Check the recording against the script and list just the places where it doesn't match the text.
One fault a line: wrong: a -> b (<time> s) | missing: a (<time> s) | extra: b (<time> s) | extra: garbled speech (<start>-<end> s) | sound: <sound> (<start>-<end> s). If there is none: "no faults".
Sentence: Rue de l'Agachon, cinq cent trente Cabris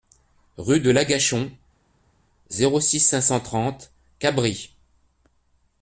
extra: zéro six (2.5 s)